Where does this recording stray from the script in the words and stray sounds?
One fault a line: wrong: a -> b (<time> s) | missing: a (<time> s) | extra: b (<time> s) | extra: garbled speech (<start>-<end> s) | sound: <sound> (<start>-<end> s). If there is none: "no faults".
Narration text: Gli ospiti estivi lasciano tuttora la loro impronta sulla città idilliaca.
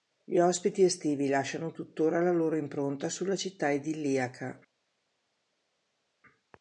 no faults